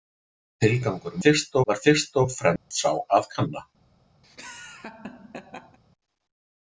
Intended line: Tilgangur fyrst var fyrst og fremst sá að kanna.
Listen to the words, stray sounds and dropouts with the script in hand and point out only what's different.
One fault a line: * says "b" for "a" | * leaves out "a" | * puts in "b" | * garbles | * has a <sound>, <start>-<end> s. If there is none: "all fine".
* has a dropout, 2.6-2.7 s
* has a laugh, 4.2-5.8 s